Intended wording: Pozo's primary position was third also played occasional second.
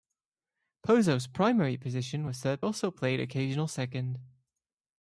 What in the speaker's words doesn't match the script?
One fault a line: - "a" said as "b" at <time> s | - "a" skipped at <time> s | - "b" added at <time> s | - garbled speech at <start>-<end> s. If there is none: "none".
none